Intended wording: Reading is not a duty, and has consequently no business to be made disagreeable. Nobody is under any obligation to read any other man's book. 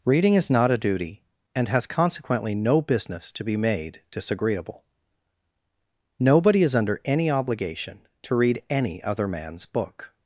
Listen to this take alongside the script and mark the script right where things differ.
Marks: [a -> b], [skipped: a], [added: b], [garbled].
Reading is not a duty, and has consequently no business to be made disagreeable. Nobody is under any obligation to read any other man's book.